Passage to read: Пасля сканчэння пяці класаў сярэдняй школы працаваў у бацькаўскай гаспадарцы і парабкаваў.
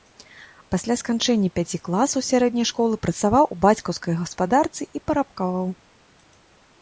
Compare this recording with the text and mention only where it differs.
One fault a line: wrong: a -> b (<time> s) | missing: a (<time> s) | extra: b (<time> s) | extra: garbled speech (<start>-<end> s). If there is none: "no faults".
no faults